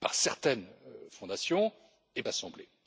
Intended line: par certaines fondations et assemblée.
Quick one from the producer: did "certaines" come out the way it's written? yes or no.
yes